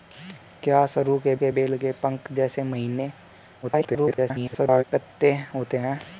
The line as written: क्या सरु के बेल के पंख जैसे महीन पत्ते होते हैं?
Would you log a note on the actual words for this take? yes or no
yes